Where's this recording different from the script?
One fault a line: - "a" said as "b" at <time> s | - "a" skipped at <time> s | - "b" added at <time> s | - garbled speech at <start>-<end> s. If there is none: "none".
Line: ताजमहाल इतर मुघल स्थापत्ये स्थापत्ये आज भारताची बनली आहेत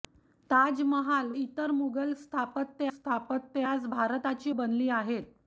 none